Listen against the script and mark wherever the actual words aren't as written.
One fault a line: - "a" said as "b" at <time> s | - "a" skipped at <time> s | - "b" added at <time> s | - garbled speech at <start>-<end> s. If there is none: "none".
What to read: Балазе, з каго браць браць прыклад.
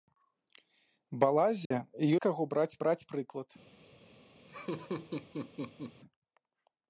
none